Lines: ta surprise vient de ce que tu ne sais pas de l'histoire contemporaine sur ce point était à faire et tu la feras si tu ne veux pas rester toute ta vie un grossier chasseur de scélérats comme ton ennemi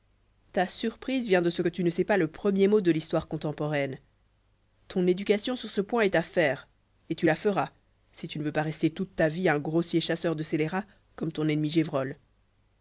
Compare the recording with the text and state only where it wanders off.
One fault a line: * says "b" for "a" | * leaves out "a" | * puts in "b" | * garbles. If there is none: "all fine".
* puts in "le premier mot"
* puts in "ton éducation"
* says "est" for "était"